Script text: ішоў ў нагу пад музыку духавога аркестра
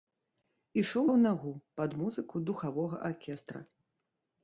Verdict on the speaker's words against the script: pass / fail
pass